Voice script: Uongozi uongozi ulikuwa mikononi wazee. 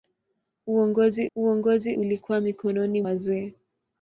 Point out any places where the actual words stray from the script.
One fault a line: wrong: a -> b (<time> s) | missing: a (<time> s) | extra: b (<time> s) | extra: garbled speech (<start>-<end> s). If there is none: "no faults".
no faults